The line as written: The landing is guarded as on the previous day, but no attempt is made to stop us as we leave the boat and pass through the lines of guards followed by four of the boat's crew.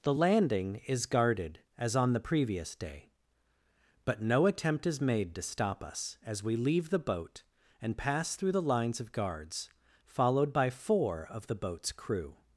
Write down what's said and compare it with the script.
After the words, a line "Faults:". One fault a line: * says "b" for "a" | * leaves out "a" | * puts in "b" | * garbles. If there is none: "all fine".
The landing is guarded as on the previous day, but no attempt is made to stop us as we leave the boat and pass through the lines of guards followed by four of the boat's crew.
Faults:
all fine